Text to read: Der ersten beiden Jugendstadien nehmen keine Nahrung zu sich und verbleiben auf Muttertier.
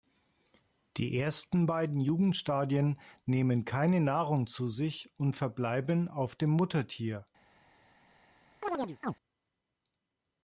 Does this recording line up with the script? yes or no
no